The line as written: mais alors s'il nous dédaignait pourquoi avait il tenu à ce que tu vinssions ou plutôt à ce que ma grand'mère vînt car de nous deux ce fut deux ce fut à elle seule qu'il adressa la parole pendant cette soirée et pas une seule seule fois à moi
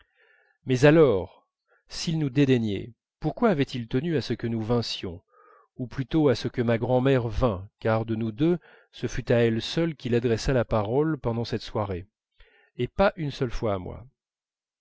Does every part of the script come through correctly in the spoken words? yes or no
no